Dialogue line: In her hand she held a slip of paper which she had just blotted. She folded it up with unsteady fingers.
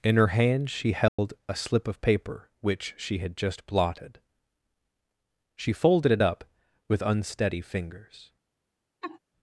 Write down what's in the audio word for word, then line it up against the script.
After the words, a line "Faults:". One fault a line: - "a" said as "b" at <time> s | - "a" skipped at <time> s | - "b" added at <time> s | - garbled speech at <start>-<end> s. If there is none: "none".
In her hand she held a slip of paper which she had just blotted. She folded it up with unsteady fingers.
Faults:
none